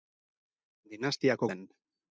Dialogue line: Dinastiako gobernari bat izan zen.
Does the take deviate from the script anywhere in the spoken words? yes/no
yes